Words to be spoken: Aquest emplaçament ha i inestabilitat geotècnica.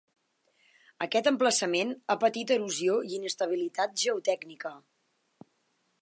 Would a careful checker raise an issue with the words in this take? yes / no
yes